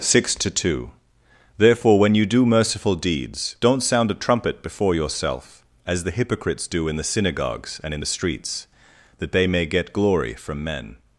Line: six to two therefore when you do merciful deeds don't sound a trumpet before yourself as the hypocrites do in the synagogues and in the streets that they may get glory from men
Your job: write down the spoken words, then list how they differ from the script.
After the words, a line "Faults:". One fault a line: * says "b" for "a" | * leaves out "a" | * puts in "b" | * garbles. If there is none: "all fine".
six to two therefore when you do merciful deeds don't sound a trumpet before yourself as the hypocrites do in the synagogues and in the streets that they may get glory from men
Faults:
all fine